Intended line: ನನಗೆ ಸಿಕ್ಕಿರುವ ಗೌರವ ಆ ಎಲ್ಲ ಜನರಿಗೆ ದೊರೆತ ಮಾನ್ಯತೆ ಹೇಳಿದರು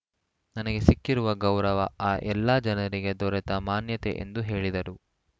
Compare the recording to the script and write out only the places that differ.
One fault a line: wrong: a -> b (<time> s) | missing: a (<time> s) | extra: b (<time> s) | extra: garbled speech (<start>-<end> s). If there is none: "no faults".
extra: ಎಂದು (4.2 s)